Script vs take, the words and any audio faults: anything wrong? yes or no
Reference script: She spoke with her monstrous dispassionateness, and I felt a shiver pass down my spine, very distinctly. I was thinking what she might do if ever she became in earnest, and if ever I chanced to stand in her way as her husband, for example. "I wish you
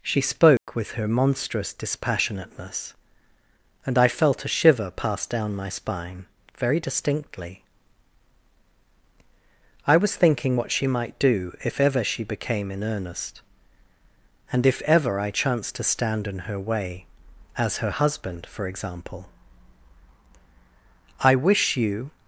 yes